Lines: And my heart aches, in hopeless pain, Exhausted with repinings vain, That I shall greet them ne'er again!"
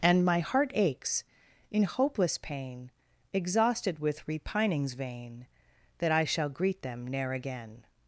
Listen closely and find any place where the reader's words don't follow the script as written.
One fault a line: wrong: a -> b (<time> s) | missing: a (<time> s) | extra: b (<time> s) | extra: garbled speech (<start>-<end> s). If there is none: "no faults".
no faults